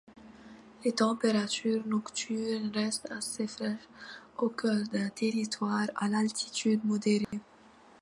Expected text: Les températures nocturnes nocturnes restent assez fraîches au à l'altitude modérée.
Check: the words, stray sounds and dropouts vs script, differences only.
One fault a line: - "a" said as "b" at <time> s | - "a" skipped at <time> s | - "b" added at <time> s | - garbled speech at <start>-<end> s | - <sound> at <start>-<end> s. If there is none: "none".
- "nocturnes" skipped at 2.7 s
- "cœur d'un territoire" added at 4.5 s
- dropout at 7.2-7.3 s